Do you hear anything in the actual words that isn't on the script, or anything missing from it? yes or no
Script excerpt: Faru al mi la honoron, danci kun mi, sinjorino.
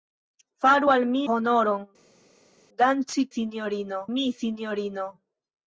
yes